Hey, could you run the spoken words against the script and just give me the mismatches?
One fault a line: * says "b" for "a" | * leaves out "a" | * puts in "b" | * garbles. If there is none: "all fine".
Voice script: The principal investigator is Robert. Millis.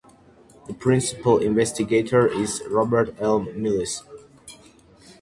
* puts in "L"